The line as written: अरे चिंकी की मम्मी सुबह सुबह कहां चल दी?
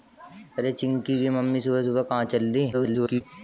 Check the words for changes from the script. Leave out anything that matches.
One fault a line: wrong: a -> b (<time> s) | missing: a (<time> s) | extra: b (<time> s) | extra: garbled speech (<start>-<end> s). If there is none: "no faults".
extra: garbled speech (2.7-3.2 s)